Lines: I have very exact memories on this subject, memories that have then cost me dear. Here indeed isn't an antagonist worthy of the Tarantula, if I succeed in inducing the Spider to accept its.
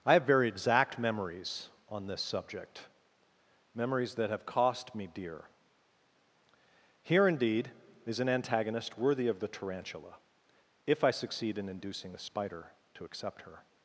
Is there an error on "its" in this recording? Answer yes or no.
yes